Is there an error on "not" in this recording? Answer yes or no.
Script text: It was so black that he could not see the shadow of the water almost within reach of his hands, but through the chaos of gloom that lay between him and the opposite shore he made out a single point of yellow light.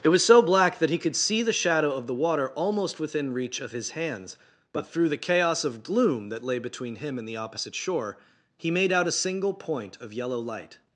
yes